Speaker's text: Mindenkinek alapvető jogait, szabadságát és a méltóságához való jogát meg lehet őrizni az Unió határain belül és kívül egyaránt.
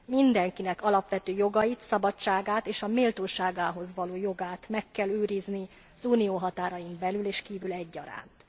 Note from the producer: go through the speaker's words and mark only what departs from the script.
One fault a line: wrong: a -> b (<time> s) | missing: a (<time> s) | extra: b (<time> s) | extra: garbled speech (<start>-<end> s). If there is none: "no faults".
wrong: lehet -> kell (4.9 s)